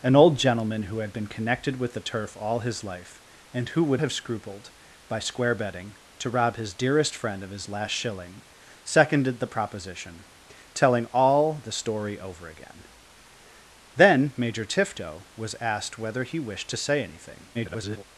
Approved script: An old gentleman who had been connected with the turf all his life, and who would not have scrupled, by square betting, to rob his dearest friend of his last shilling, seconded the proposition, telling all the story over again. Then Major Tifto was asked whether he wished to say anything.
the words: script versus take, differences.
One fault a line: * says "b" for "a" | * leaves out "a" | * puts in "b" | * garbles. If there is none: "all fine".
* leaves out "not"
* garbles